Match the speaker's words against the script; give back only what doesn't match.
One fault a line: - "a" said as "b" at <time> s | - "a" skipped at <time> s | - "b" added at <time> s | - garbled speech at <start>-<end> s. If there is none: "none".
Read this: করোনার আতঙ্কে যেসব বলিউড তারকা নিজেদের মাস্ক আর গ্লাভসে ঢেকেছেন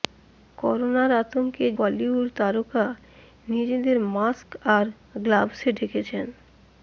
- "যেসব" skipped at 1.6 s